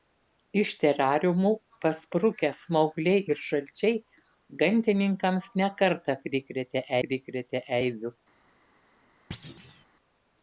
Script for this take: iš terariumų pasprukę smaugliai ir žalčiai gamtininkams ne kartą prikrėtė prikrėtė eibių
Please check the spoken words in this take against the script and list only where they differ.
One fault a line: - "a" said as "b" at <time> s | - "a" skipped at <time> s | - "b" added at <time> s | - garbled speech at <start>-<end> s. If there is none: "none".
none